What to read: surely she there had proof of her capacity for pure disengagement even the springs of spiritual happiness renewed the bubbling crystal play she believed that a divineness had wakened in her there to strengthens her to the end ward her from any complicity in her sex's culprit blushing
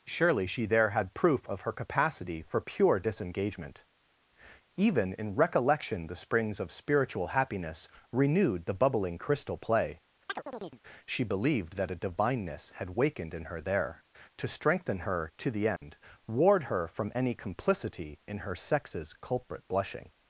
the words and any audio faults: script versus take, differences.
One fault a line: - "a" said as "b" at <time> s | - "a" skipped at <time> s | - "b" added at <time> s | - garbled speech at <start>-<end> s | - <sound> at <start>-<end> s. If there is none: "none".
- "in recollection" added at 5.1 s
- chirp at 10.3-10.8 s
- "strengthens" said as "strengthen" at 14.5 s
- dropout at 15.8-15.8 s